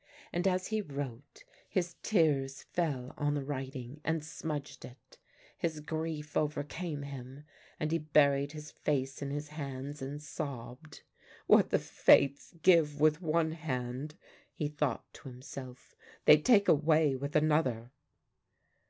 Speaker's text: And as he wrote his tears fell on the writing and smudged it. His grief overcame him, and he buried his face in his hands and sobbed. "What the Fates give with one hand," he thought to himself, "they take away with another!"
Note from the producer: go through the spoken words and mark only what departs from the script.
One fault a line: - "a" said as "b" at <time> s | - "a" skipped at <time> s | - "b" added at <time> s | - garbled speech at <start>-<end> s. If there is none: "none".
none